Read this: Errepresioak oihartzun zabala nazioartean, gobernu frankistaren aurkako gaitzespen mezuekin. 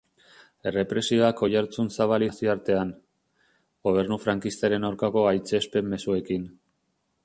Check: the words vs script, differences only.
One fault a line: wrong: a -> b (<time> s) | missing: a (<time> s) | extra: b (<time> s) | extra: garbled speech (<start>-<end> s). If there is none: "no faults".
no faults